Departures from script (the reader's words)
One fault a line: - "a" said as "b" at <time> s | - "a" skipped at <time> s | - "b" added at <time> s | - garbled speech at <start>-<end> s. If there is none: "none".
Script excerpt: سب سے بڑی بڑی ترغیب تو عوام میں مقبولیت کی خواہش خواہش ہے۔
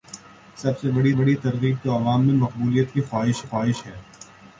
none